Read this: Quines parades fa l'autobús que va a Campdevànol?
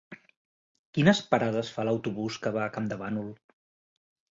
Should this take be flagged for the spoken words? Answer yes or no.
no